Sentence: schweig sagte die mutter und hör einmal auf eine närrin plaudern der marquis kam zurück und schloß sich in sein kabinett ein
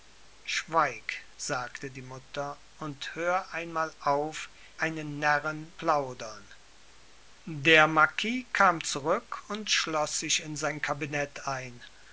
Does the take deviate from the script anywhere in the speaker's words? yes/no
no